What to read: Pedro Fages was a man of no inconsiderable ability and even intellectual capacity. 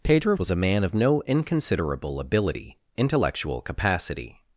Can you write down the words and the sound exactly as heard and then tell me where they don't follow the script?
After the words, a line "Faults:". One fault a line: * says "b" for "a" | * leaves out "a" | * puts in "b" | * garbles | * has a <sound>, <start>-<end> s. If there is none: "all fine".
Pedro Was a man of no inconsiderable ability intellectual capacity.
Faults:
* leaves out "Fages"
* leaves out "and even"